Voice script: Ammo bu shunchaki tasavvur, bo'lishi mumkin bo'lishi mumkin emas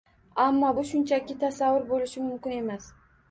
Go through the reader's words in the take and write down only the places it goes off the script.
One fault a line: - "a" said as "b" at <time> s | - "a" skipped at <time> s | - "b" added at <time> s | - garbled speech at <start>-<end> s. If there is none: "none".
- "bo'lishi mumkin" skipped at 2.6 s